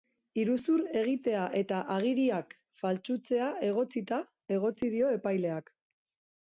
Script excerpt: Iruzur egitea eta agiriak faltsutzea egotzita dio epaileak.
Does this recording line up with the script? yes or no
no